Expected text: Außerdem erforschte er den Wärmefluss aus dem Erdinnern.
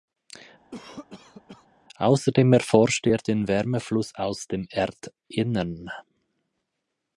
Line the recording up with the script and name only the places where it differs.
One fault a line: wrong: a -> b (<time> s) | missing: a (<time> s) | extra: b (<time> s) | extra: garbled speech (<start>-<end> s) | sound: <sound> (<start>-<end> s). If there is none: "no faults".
sound: cough (0.7-1.7 s)